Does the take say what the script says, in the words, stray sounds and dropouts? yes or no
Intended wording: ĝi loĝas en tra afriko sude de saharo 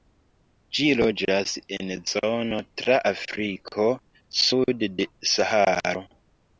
no